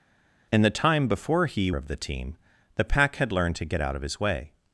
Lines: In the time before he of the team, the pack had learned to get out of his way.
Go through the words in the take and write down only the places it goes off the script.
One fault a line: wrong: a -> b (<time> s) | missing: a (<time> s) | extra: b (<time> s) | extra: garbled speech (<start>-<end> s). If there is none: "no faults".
no faults